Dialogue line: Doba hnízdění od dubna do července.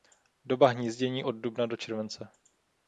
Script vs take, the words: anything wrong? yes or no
no